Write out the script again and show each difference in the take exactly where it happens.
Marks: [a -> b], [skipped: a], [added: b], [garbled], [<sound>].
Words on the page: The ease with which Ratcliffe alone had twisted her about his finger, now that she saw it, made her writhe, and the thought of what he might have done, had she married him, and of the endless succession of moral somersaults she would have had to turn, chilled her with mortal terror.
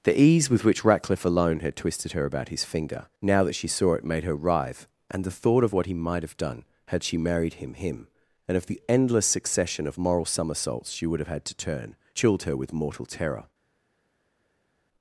The ease with which Ratcliffe alone had twisted her about his finger, now that she saw it, made her writhe, and the thought of what he might have done, had she married him, [added: him] and of the endless succession of moral somersaults she would have had to turn, chilled her with mortal terror.